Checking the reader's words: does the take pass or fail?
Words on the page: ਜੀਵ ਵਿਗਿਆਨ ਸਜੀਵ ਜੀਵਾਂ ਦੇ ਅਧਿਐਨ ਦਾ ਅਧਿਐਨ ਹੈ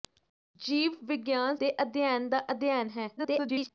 fail